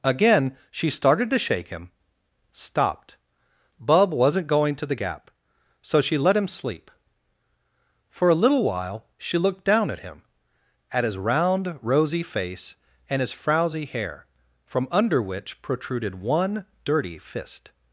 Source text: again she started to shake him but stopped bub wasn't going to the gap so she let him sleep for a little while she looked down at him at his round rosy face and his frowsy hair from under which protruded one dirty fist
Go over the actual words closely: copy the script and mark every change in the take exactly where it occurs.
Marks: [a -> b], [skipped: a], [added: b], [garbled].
again she started to shake him [skipped: but] stopped bub wasn't going to the gap so she let him sleep for a little while she looked down at him at his round rosy face and his frowsy hair from under which protruded one dirty fist